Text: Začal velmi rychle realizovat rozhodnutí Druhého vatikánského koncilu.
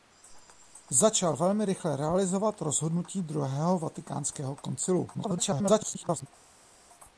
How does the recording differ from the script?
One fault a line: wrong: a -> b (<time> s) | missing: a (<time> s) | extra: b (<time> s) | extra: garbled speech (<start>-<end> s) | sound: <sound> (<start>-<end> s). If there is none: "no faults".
extra: garbled speech (5.1-6.3 s)